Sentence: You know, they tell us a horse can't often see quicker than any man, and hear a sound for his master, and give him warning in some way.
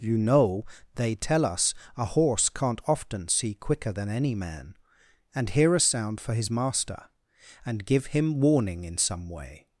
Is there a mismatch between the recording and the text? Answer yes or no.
no